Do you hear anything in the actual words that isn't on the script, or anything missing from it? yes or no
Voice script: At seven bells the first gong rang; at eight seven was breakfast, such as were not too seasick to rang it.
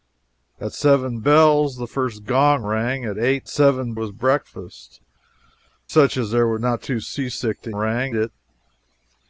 no